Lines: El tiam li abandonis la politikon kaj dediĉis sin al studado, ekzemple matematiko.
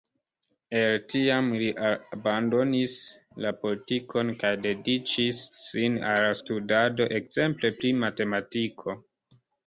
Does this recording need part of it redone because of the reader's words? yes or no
yes